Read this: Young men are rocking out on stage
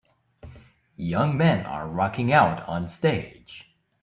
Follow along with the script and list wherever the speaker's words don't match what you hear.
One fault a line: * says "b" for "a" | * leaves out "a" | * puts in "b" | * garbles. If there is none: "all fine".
all fine